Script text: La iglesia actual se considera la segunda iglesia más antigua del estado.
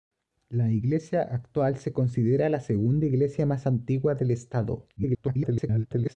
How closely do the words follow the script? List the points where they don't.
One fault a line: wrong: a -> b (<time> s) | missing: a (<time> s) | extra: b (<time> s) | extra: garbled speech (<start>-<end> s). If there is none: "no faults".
extra: garbled speech (5.0-6.1 s)